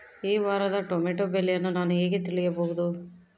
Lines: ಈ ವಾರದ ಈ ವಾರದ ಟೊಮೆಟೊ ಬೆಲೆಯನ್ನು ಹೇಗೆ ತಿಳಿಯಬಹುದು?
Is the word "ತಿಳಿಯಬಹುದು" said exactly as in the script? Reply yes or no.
yes